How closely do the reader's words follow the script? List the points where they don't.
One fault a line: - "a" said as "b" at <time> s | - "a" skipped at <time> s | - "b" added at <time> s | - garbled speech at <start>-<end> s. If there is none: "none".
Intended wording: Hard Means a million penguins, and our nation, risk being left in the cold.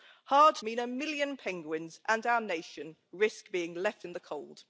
none